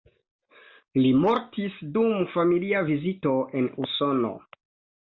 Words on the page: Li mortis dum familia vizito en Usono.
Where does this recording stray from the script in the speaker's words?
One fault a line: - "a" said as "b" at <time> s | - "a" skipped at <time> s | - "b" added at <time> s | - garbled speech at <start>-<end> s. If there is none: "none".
none